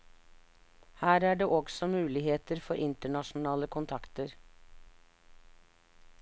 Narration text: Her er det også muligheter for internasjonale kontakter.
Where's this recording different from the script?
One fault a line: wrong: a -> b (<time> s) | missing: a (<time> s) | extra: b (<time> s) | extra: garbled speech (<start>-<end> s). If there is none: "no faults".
no faults